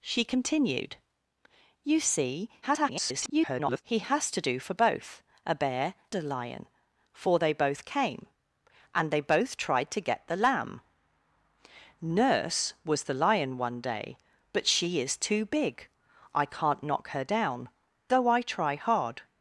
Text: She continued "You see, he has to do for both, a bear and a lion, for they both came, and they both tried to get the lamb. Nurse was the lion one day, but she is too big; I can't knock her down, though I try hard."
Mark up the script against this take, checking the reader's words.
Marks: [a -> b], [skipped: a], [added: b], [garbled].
She continued "You see, [garbled] he has to do for both, a bear [skipped: and] a lion, for they both came, and they both tried to get the lamb. Nurse was the lion one day, but she is too big; I can't knock her down, though I try hard."